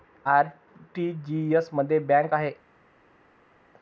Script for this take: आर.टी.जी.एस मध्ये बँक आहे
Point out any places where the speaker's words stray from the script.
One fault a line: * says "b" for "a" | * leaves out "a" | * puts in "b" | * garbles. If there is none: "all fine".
all fine